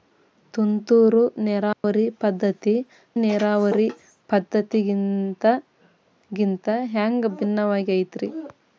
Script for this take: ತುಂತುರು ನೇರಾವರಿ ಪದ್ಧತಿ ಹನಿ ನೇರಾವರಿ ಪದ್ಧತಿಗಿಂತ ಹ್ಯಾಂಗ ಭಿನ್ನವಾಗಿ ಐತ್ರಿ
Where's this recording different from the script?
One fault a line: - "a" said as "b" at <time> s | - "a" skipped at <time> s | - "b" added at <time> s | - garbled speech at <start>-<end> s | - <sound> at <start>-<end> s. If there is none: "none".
- dropout at 1.7-1.8 s
- "ಹನಿ" skipped at 2.8 s